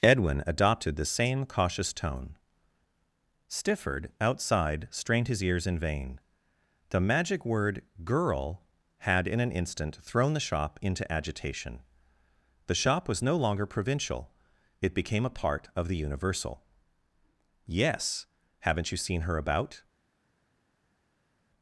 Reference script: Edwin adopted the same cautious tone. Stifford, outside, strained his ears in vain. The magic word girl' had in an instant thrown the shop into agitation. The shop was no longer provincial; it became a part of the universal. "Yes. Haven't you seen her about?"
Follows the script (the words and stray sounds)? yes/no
yes